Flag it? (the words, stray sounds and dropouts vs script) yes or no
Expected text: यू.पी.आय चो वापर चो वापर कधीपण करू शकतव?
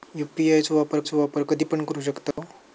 yes